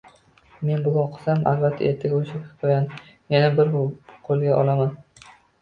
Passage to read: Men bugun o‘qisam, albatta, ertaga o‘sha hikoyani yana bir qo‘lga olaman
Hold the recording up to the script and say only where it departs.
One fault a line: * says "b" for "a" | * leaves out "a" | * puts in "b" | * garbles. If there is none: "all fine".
all fine